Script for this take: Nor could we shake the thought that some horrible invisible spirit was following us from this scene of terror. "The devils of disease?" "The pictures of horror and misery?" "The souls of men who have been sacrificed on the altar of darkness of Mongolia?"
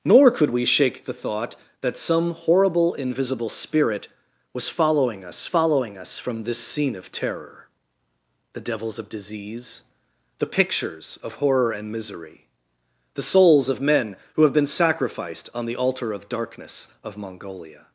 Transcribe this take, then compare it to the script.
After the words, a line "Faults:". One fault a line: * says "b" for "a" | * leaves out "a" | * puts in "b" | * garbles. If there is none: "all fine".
Nor could we shake the thought that some horrible invisible spirit was following us following us from this scene of terror. "The devils of disease?" "The pictures of horror and misery?" "The souls of men who have been sacrificed on the altar of darkness of Mongolia?"
Faults:
* puts in "following us"